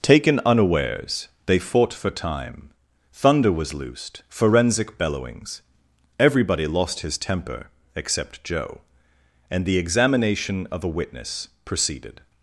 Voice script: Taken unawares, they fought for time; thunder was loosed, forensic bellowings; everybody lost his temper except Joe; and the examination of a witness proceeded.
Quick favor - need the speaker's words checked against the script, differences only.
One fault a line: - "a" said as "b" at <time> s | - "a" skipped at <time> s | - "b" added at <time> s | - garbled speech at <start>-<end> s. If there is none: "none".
none